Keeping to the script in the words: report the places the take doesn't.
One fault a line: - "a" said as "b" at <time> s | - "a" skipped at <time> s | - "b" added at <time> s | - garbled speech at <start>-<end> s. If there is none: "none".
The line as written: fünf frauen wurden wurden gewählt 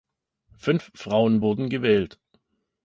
- "wurden" skipped at 1.7 s